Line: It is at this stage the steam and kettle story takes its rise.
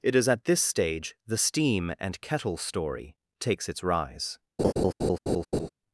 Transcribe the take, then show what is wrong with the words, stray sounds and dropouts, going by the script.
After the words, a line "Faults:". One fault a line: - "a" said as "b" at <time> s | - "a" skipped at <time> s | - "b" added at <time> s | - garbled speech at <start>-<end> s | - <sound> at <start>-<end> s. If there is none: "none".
It is at this stage the steam and kettle story takes its rise.
Faults:
- laugh at 4.6-5.7 s